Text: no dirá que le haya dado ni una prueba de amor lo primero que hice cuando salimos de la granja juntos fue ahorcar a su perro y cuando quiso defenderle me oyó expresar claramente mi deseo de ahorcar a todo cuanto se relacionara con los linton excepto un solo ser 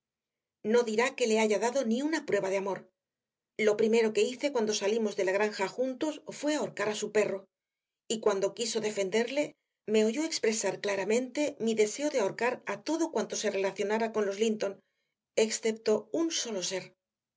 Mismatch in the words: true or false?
false